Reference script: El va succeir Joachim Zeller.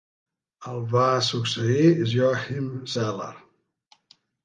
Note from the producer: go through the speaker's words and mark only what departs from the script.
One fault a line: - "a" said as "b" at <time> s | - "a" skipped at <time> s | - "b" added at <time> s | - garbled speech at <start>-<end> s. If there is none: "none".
none